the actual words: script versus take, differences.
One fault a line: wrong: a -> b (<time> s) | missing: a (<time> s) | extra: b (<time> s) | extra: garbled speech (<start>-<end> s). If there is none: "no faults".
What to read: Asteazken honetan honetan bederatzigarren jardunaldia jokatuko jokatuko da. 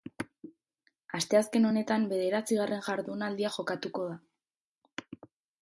missing: honetan (2.1 s)
missing: jokatuko (4.1 s)